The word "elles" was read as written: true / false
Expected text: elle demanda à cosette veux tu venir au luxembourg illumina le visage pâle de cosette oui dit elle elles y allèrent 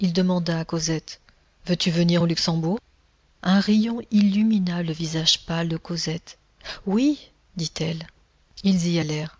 false